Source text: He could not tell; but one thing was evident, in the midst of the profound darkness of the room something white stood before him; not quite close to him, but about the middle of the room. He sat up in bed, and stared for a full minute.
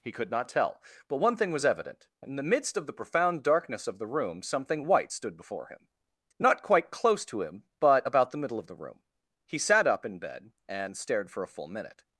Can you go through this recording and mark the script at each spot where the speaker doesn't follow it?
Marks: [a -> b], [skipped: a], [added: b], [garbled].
He could not tell; but one thing was evident, in the midst of the profound darkness of the room something white stood before him; not quite close to him, but about the middle of the room. He sat up in bed, and stared for a full minute.